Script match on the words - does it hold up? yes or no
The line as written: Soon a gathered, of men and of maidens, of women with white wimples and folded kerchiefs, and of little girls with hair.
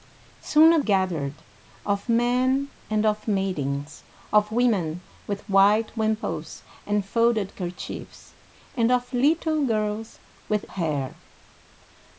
yes